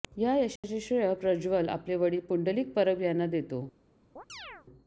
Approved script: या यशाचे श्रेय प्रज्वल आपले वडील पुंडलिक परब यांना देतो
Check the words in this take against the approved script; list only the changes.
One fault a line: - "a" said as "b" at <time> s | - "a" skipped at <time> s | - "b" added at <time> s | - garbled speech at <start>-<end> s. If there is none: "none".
none